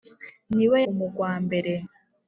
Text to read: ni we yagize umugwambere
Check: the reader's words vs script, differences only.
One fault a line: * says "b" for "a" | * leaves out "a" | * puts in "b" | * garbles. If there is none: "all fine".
* leaves out "yagize"